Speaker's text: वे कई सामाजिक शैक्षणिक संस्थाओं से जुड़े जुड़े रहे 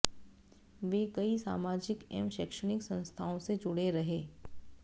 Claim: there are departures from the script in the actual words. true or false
true